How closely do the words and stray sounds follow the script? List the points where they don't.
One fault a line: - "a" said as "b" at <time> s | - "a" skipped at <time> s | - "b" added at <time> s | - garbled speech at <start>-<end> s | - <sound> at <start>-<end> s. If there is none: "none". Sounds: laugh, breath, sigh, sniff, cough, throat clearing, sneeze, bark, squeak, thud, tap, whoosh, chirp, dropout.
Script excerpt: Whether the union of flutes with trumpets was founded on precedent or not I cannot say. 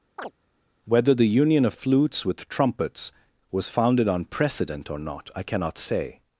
- chirp at 0.2-0.3 s